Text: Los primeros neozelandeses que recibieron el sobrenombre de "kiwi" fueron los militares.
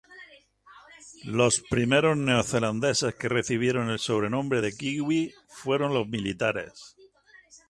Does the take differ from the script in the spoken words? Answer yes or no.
no